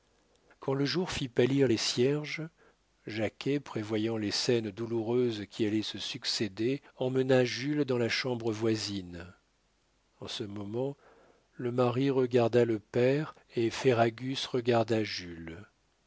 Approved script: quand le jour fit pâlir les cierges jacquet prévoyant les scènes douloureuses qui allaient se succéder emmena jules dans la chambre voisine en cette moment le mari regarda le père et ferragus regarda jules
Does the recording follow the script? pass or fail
fail